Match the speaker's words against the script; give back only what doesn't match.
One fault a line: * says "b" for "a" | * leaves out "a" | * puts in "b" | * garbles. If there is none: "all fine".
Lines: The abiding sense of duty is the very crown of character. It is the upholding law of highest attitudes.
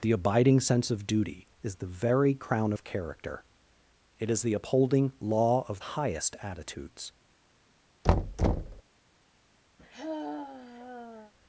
all fine